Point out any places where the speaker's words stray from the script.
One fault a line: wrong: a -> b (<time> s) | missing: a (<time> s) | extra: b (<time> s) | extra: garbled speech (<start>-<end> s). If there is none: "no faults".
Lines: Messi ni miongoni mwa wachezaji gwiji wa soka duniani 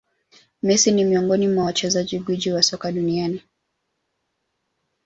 no faults